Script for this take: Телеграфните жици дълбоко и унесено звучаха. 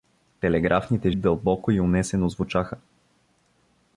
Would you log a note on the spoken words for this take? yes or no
yes